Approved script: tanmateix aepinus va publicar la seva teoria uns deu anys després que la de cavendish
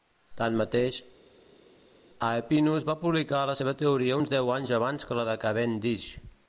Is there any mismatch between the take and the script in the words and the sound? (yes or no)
yes